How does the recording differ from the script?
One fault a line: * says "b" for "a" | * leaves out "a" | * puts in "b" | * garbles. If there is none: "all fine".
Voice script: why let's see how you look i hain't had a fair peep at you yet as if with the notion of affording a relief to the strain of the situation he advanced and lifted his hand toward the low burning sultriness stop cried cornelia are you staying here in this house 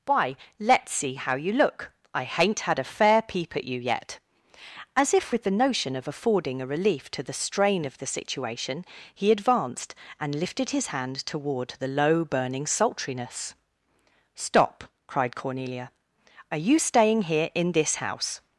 all fine